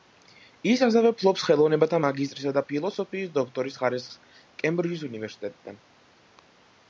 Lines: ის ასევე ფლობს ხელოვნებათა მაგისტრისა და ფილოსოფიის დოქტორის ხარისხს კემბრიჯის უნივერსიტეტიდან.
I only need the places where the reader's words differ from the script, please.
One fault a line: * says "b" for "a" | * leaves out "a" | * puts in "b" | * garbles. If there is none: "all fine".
all fine